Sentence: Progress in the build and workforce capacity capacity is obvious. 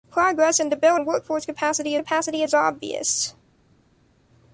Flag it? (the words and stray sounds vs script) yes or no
no